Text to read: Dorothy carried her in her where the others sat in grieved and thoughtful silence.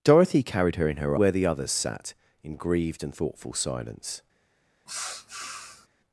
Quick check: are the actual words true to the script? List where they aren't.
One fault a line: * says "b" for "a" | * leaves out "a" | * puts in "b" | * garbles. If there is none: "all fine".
all fine